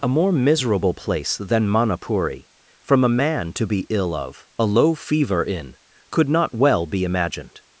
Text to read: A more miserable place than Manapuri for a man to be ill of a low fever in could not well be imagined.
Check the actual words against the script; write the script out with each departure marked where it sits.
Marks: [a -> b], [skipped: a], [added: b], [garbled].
A more miserable place than Manapuri [for -> from] a man to be ill of a low fever in could not well be imagined.